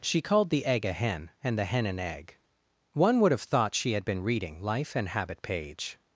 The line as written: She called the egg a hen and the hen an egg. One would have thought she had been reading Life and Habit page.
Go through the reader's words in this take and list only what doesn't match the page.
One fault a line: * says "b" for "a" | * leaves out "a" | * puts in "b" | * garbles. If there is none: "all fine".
all fine